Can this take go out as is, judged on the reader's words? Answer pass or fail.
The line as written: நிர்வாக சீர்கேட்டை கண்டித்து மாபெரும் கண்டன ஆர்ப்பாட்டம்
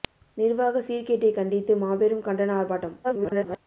fail